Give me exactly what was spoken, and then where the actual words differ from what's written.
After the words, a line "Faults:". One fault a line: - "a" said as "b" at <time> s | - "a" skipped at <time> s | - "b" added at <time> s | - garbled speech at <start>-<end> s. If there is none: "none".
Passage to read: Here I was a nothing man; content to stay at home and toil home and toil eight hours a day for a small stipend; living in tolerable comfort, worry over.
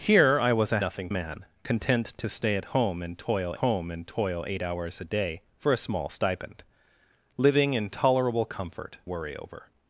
Here I was a nothing man; content to stay at home and toil home and toil eight hours a day for a small stipend; living in tolerable comfort, worry over.
Faults:
none